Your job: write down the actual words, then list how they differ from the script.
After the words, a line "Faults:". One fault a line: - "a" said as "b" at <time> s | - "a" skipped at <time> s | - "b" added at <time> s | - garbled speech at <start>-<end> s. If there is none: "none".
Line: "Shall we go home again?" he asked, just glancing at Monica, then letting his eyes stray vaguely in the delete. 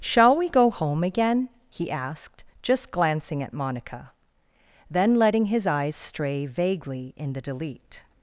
"Shall we go home again?" he asked, just glancing at Monica, then letting his eyes stray vaguely in the delete.
Faults:
none